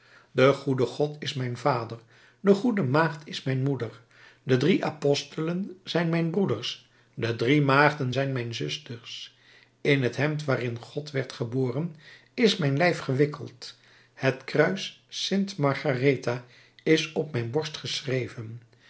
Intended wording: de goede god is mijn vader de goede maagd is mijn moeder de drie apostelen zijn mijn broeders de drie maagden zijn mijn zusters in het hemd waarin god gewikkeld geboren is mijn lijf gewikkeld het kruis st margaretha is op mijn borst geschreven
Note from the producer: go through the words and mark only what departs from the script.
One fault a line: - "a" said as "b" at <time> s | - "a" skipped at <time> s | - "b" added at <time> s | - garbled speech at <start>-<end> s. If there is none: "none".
- "gewikkeld" said as "werd" at 11.1 s